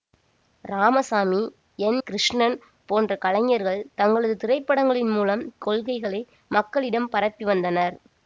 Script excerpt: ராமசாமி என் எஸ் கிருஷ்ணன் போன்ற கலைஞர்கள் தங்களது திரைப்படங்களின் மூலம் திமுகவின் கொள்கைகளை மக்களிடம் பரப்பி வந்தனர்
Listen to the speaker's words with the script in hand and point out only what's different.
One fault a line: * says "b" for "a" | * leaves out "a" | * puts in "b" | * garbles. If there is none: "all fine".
* leaves out "எஸ்"
* leaves out "திமுகவின்"